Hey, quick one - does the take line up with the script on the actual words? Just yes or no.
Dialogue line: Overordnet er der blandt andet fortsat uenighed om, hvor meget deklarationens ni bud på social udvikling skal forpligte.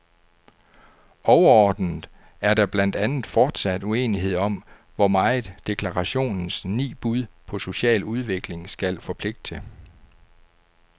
yes